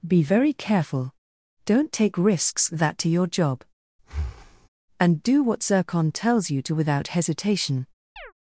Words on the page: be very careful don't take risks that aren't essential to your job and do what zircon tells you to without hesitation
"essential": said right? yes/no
no